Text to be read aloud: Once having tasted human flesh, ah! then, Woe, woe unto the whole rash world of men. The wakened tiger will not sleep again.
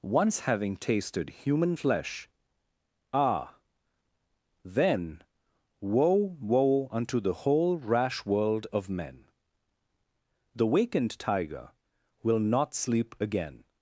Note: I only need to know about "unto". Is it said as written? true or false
true